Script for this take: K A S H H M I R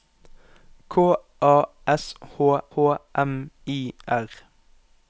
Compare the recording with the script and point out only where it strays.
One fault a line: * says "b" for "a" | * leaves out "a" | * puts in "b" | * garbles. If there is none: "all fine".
all fine